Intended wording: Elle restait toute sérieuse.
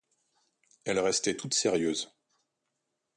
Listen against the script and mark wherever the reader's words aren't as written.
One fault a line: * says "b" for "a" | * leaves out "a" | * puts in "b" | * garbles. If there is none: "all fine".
all fine